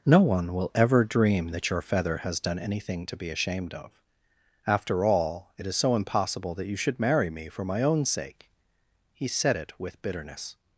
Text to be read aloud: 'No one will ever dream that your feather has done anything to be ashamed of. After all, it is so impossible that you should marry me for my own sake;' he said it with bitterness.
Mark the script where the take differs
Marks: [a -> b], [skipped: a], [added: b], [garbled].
'No one will ever dream that your feather has done anything to be ashamed of. After all, it is so impossible that you should marry me for my own sake;' he said it with bitterness.